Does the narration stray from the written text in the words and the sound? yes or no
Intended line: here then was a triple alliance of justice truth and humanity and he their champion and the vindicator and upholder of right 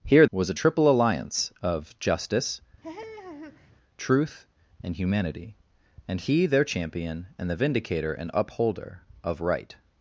yes